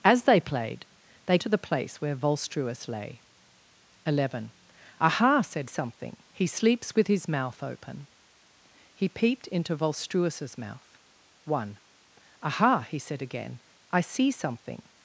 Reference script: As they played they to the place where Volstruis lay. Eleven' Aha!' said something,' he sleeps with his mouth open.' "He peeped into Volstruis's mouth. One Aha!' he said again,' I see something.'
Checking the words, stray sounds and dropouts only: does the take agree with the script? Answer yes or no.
yes